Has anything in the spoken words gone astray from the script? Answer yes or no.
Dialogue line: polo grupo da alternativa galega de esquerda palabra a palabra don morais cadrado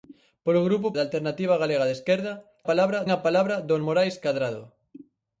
no